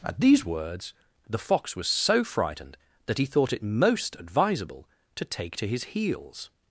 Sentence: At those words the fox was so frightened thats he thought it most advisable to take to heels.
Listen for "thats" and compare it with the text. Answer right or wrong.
wrong